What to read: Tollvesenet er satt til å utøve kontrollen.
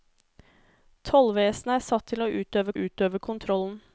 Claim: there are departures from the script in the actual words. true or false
true